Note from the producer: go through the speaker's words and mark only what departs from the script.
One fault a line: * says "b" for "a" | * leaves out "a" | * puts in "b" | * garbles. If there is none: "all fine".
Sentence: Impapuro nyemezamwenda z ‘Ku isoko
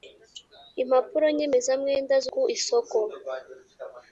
all fine